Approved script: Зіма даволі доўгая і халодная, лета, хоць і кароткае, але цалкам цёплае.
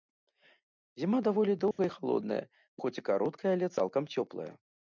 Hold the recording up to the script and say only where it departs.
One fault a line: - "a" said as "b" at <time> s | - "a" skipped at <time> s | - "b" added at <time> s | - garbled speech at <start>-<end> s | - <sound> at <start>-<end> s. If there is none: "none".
- dropout at 1.7-1.8 s
- "лета" skipped at 2.4 s